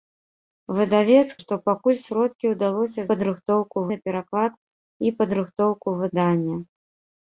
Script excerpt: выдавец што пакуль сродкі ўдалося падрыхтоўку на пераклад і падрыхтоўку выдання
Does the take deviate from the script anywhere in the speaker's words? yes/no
no